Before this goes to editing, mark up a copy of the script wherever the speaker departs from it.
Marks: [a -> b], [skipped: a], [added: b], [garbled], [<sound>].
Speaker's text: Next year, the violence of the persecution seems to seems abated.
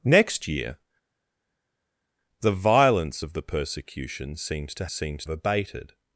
Next year, the violence of the persecution seems to seems abated.